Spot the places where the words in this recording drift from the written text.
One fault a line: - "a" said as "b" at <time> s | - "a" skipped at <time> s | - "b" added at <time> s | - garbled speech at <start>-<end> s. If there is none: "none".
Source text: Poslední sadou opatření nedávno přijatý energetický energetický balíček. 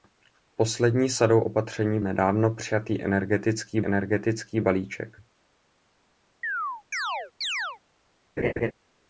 none